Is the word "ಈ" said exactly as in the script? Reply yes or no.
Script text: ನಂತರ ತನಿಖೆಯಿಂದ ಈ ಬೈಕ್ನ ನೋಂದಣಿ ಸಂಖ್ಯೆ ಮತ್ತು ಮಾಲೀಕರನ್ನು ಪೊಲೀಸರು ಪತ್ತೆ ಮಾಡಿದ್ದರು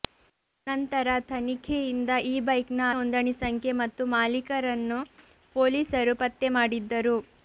yes